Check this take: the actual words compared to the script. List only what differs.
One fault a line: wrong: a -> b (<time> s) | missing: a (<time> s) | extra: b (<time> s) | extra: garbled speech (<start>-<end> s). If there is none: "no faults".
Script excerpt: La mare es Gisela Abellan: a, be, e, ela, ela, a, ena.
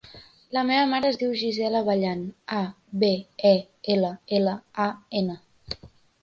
extra: meva (0.7 s)
extra: diu (1.2 s)